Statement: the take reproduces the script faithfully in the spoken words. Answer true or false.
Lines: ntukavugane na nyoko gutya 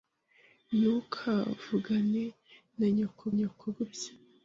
false